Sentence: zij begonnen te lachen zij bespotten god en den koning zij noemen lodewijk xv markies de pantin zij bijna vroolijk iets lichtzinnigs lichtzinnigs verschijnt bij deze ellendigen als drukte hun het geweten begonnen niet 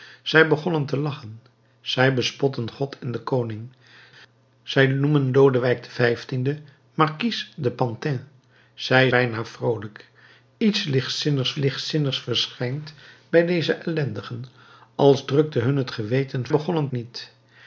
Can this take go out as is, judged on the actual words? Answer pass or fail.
pass